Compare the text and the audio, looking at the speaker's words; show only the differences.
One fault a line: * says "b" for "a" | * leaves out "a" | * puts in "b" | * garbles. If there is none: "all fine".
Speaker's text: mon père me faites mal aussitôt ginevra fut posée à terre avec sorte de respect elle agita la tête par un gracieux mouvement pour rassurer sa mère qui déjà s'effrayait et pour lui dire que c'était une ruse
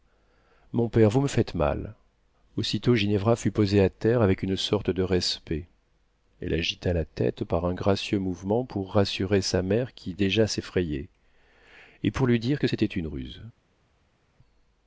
* puts in "vous"
* puts in "une"